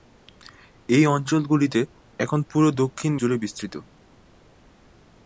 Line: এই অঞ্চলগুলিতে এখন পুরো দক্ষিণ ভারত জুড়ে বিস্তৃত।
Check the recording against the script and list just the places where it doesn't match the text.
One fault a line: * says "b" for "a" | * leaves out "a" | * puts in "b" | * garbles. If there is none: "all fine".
* leaves out "ভারত"